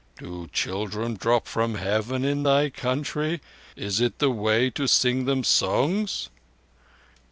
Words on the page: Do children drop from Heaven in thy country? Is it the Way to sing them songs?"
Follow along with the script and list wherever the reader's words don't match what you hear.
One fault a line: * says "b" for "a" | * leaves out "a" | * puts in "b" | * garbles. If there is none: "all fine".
all fine